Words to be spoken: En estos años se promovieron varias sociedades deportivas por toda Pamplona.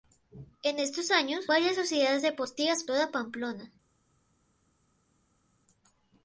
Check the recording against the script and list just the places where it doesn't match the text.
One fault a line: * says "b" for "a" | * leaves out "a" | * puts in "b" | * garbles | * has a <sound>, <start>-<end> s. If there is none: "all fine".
* leaves out "se promovieron"
* leaves out "por"